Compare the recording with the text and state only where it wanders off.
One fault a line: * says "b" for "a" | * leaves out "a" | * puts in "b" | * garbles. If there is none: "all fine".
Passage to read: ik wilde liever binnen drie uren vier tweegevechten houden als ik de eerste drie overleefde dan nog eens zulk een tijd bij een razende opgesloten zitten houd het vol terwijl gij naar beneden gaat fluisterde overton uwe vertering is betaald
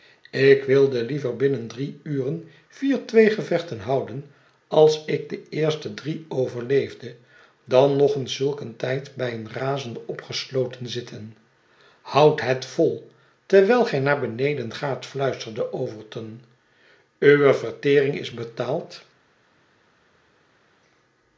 all fine